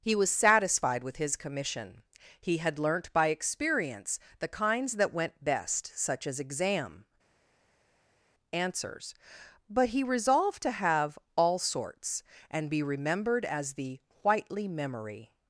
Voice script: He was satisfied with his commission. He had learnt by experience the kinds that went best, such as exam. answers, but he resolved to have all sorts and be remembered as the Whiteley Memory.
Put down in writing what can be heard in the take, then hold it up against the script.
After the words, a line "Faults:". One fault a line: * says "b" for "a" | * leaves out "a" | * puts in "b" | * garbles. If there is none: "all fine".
He was satisfied with his commission. He had learnt by experience the kinds that went best, such as exam. answers, but he resolved to have all sorts and be remembered as the Whiteley Memory.
Faults:
all fine